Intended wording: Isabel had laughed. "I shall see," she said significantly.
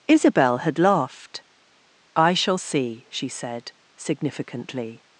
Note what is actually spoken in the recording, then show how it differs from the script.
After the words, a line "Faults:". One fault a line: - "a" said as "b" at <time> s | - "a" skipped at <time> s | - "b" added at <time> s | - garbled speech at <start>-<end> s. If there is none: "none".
Isabel had laughed. "I shall see," she said significantly.
Faults:
none